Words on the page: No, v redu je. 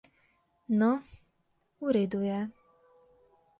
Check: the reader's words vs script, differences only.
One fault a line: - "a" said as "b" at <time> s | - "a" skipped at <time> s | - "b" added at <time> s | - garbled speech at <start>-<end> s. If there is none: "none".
none